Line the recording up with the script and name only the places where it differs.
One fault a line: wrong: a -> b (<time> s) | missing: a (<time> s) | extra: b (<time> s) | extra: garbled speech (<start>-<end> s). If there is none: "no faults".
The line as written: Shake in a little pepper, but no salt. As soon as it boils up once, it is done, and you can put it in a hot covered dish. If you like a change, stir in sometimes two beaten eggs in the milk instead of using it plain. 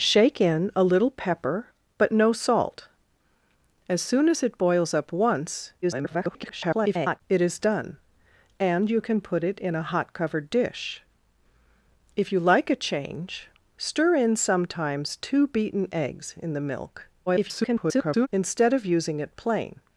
extra: garbled speech (5.8-7.2 s)
extra: garbled speech (17.3-18.3 s)